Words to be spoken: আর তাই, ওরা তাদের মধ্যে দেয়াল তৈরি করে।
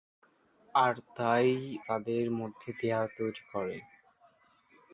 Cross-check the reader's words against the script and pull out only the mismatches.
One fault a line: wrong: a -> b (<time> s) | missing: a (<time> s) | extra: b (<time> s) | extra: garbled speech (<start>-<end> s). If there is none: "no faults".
missing: ওরা (1.5 s)